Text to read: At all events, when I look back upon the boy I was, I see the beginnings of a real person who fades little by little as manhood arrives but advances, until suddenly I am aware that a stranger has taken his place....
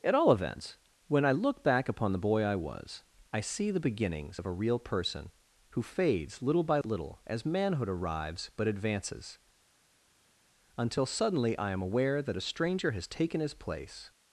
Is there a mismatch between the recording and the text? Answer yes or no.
no